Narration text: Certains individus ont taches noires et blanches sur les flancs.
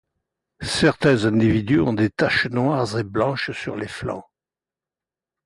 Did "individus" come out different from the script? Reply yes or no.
no